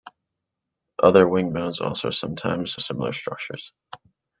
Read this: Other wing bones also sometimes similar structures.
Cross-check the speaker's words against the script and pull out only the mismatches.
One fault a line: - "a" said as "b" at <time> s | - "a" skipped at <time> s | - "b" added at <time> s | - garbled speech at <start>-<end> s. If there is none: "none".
none